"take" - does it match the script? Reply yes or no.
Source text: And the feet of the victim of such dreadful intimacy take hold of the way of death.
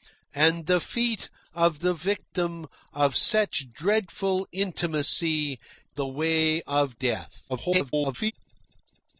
no